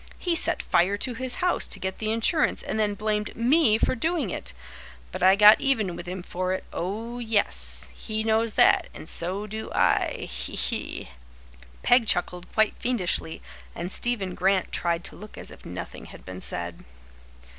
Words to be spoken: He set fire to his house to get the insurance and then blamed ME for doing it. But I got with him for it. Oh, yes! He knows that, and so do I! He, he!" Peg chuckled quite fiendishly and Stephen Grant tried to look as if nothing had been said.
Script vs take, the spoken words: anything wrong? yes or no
yes